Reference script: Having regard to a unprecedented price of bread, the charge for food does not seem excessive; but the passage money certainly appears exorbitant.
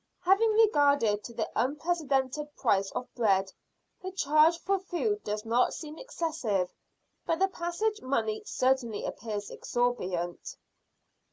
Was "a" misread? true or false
true